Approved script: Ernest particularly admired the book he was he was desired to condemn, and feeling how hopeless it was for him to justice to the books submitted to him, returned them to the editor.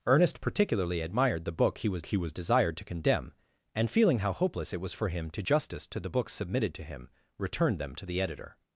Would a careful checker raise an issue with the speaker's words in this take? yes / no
no